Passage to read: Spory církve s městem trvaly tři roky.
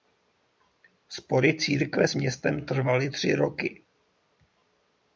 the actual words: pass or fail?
pass